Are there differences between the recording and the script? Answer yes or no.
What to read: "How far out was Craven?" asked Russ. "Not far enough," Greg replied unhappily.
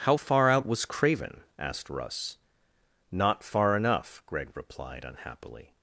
no